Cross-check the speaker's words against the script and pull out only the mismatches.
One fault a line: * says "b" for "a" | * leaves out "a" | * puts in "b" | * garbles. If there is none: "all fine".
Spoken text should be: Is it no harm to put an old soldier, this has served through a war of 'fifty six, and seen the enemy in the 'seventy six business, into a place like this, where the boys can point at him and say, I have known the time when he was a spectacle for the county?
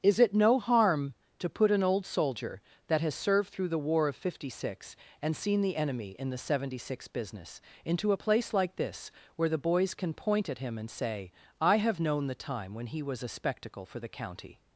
* says "that" for "this"
* says "the" for "a"